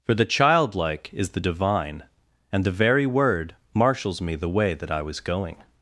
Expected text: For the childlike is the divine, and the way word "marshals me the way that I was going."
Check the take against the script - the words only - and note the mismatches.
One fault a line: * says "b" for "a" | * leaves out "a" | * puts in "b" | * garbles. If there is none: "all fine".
* says "very" for "way"